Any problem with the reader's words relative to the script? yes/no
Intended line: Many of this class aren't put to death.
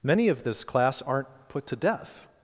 no